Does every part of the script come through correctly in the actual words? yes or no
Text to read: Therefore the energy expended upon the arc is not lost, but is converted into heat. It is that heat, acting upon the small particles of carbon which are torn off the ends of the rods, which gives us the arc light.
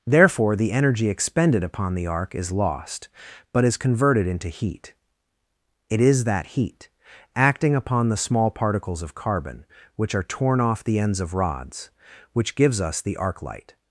no